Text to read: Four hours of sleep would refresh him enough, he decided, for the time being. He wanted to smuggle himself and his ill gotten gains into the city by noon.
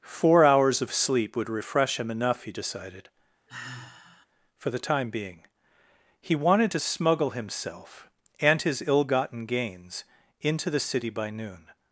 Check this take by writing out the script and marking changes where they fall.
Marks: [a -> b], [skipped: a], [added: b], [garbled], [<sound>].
Four hours of sleep would refresh him enough, he decided, [sigh] for the time being. He wanted to smuggle himself and his ill gotten gains into the city by noon.